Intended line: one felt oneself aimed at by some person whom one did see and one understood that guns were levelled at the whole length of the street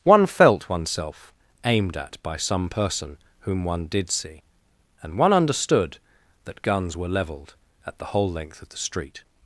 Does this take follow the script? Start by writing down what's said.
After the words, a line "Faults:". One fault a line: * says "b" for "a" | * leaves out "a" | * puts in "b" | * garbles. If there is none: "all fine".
one felt oneself aimed at by some person whom one did see and one understood that guns were levelled at the whole length of the street
Faults:
all fine